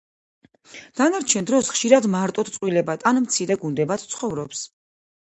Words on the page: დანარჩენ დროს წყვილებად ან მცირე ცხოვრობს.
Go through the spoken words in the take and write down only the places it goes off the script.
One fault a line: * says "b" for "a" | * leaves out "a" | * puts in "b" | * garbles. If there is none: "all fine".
* puts in "ხშირად მარტოდ"
* puts in "გუნდებად"